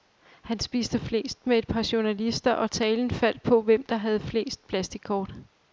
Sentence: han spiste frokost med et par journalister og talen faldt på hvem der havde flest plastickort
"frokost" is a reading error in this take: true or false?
true